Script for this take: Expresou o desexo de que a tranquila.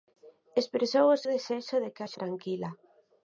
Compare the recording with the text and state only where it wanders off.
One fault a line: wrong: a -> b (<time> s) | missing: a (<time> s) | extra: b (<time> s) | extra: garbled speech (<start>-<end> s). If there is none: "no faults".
no faults